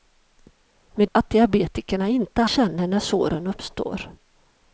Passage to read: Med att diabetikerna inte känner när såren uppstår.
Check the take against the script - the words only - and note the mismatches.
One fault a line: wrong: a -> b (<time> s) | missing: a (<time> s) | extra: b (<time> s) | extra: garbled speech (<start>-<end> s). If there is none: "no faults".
no faults